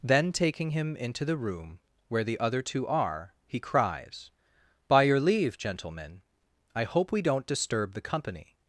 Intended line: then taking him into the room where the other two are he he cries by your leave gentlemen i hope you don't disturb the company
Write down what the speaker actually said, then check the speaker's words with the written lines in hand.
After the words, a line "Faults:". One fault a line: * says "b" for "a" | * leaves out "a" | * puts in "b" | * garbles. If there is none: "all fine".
then taking him into the room where the other two are he cries by your leave gentlemen i hope we don't disturb the company
Faults:
* leaves out "he"
* says "we" for "you"